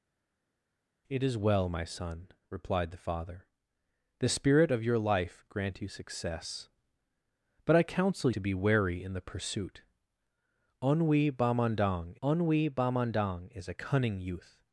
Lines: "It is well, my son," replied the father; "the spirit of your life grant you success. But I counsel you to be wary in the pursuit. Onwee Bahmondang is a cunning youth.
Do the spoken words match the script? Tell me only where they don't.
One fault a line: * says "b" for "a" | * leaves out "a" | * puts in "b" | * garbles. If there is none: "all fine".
* leaves out "you"
* puts in "onwee Bahmondang"